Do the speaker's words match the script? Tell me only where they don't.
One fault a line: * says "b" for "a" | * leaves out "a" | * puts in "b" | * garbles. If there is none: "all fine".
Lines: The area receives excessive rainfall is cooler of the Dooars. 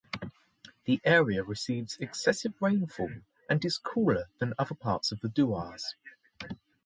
* puts in "and"
* puts in "than other parts"